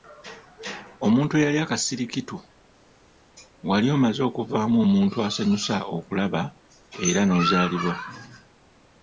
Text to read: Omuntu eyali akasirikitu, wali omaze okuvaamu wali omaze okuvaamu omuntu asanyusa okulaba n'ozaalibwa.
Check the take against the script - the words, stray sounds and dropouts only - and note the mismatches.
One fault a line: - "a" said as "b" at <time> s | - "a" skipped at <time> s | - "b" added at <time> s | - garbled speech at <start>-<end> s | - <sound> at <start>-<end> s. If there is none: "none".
- "wali omaze okuvaamu" skipped at 4.8 s
- "era" added at 7.1 s